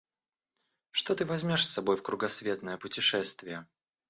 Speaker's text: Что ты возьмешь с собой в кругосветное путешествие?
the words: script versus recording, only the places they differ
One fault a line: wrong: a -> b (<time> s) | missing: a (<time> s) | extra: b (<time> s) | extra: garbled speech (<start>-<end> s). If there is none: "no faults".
no faults